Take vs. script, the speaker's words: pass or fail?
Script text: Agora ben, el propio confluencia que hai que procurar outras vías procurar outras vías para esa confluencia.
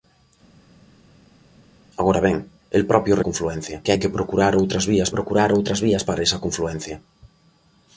pass